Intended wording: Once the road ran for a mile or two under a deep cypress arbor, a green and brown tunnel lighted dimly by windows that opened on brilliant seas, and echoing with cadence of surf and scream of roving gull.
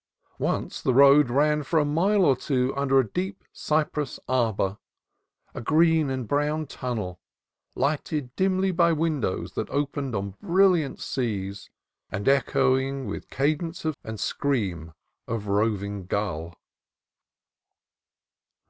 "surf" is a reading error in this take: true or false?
true